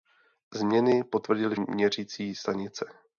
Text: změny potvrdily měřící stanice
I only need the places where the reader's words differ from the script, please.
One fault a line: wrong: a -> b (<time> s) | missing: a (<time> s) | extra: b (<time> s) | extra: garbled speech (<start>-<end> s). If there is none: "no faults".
no faults